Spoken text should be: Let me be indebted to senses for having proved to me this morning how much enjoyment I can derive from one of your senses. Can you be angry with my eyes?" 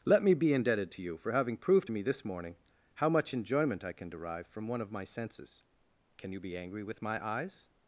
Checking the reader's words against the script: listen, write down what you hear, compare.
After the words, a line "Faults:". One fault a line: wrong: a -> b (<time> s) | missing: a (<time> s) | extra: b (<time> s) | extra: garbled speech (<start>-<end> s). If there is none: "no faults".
Let me be indebted to you for having proved to me this morning how much enjoyment I can derive from one of my senses. Can you be angry with my eyes?"
Faults:
wrong: senses -> you (1.0 s)
wrong: your -> my (4.9 s)